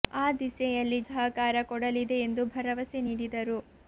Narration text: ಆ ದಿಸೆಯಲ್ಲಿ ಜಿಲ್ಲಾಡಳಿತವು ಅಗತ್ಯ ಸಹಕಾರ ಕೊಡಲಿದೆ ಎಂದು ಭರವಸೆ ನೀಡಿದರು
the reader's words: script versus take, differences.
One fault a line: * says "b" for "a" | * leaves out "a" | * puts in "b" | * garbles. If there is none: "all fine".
* leaves out "ಜಿಲ್ಲಾಡಳಿತವು ಅಗತ್ಯ"